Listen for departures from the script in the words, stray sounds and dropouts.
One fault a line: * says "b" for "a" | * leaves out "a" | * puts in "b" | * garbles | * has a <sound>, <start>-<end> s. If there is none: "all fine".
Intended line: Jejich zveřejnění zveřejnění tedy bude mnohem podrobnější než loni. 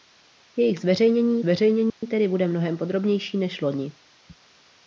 * has a dropout, 1.9-2.0 s